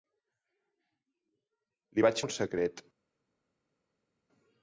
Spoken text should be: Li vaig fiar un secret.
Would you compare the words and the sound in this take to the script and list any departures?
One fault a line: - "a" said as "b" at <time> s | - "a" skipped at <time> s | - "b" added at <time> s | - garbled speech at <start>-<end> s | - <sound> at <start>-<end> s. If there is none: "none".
- "fiar" skipped at 2.2 s